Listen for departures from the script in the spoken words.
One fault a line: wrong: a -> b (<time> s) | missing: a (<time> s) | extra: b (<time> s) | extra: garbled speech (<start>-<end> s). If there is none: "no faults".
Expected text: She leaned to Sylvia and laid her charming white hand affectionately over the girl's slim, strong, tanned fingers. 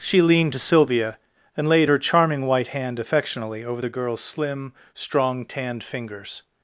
no faults